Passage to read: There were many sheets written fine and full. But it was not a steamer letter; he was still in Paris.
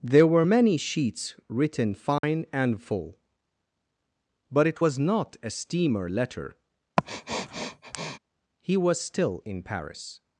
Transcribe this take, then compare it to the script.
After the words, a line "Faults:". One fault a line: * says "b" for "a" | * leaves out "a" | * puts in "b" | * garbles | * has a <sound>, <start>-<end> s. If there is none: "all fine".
There were many sheets written fine and full. But it was not a steamer letter; he was still in Paris.
Faults:
* has a dropout, 2.2-2.2 s
* has a sniff, 7.0-8.2 s